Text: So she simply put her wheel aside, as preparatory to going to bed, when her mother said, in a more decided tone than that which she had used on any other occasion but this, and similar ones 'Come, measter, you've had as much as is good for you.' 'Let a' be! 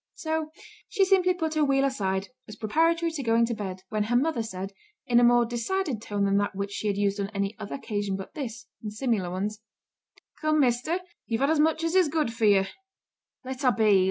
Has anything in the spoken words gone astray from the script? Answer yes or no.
no